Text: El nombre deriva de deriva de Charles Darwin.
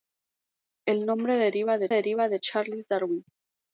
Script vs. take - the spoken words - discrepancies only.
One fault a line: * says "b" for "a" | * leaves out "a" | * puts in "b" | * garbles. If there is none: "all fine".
all fine